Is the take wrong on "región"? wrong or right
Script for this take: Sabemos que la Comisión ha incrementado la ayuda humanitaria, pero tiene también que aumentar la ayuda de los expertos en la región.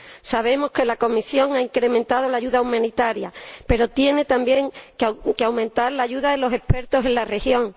right